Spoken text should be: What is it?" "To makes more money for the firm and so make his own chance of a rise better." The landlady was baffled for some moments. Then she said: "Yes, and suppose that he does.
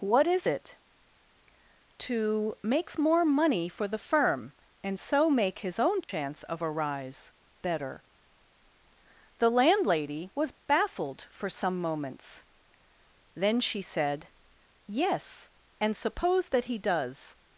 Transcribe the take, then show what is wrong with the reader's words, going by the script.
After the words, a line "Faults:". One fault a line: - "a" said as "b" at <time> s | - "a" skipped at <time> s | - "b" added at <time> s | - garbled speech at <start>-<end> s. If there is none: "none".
What is it?" "To makes more money for the firm and so make his own chance of a rise better." The landlady was baffled for some moments. Then she said: "Yes, and suppose that he does.
Faults:
none